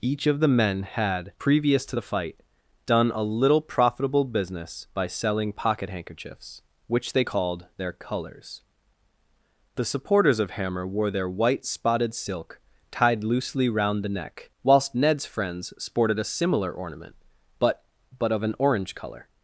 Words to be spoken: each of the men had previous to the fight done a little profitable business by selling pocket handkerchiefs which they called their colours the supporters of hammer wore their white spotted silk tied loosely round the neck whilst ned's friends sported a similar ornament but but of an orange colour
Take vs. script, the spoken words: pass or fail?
pass